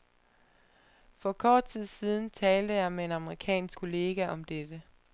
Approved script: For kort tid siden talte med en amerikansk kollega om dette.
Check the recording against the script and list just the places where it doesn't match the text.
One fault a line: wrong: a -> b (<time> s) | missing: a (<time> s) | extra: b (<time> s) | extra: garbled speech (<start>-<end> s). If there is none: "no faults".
extra: jeg (2.7 s)